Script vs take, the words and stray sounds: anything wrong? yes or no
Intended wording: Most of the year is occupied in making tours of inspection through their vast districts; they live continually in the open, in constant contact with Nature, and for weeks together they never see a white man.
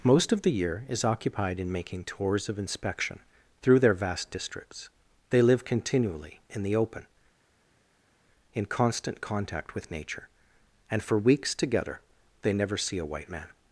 no